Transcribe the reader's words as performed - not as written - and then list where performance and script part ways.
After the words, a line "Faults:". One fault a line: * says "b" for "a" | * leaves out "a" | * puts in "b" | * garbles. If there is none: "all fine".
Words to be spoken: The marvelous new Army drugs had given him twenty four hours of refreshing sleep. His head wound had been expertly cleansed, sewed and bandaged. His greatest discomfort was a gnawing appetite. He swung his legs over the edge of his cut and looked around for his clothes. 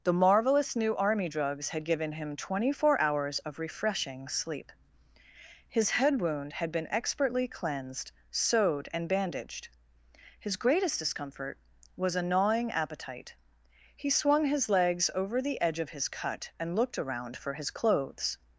The marvelous new Army drugs had given him twenty four hours of refreshing sleep. His head wound had been expertly cleansed, sewed and bandaged. His greatest discomfort was a gnawing appetite. He swung his legs over the edge of his cut and looked around for his clothes.
Faults:
all fine